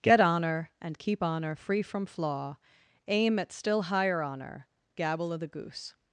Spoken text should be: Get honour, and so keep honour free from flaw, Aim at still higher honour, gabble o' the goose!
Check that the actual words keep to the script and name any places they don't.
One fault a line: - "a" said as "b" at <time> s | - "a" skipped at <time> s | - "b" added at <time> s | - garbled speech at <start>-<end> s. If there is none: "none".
- "so" skipped at 1.0 s